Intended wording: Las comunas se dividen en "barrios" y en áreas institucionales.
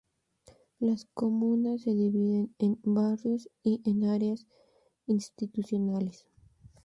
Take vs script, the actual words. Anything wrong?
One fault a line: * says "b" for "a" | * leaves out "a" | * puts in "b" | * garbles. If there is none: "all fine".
all fine